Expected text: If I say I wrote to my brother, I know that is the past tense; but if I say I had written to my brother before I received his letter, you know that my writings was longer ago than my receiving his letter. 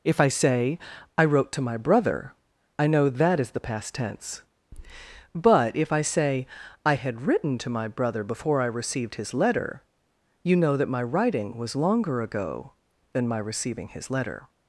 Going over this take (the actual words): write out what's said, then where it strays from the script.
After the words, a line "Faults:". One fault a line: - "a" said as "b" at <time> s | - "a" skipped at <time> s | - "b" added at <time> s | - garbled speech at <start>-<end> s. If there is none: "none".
If I say I wrote to my brother, I know that is the past tense; but if I say I had written to my brother before I received his letter, you know that my writing was longer ago than my receiving his letter.
Faults:
- "writings" said as "writing" at 11.0 s